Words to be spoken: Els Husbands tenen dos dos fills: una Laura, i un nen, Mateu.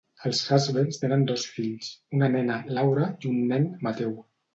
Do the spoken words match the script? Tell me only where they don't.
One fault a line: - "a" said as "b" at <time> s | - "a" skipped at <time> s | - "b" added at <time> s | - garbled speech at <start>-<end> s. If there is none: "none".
- "dos" skipped at 1.5 s
- "nena" added at 2.4 s